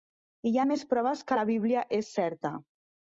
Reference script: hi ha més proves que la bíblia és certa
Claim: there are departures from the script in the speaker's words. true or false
false